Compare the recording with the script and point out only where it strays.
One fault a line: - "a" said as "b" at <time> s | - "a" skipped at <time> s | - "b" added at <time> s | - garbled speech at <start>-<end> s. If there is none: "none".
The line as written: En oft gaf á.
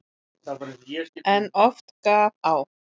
none